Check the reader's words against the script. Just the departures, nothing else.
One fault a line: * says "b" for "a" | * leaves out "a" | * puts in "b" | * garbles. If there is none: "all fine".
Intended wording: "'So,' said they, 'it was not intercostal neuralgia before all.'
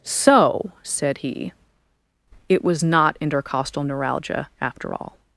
* says "he" for "they"
* says "after" for "before"